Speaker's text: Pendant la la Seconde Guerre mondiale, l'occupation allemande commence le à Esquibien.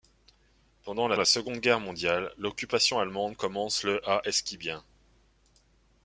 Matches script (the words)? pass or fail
pass